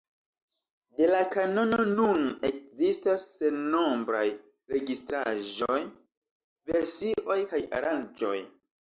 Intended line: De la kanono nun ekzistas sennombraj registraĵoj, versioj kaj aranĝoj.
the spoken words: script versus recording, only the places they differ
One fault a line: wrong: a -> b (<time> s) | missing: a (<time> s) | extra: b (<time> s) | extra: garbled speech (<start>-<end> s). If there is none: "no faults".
no faults